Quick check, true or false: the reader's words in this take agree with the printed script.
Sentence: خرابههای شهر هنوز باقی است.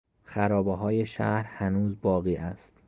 true